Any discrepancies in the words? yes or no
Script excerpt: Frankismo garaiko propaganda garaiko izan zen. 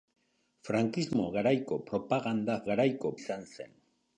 no